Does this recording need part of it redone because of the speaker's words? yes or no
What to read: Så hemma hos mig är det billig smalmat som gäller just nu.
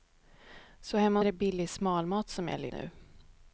yes